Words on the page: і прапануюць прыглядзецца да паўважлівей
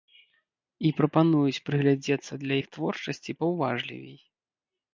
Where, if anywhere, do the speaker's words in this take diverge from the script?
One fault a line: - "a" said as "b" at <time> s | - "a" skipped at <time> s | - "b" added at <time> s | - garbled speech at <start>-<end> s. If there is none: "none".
- "іх творчасці" added at 2.6 s